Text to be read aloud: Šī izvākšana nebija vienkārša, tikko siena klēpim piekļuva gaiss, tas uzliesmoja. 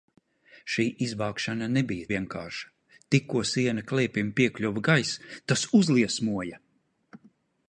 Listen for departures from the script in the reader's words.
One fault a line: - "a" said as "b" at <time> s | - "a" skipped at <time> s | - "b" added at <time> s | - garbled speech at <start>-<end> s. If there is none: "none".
none